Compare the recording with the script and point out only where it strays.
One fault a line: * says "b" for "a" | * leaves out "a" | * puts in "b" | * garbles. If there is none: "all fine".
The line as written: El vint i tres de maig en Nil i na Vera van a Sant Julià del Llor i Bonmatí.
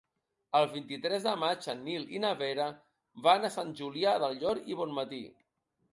all fine